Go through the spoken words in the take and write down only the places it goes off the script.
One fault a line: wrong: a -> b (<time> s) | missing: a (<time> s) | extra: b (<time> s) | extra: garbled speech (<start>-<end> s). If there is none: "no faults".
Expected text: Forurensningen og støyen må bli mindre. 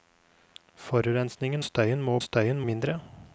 missing: og (1.6 s)
wrong: bli -> støyen (2.2 s)